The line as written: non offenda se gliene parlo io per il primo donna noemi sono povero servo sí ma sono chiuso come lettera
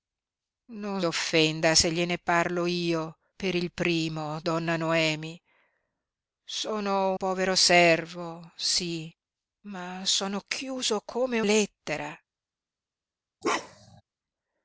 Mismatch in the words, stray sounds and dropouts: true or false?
true